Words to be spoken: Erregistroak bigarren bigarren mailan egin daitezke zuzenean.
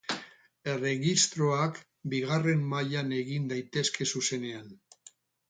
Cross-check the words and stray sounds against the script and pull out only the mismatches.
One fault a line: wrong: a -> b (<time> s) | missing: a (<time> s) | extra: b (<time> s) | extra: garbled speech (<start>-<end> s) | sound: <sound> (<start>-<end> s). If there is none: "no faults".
missing: bigarren (2.6 s)